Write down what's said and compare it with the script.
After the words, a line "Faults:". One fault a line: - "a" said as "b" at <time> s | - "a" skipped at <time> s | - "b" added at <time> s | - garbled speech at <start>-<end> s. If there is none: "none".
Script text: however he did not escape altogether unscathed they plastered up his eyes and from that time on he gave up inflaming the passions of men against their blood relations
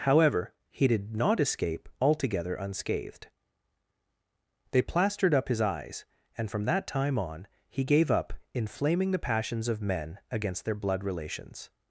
however he did not escape altogether unscathed they plastered up his eyes and from that time on he gave up inflaming the passions of men against their blood relations
Faults:
none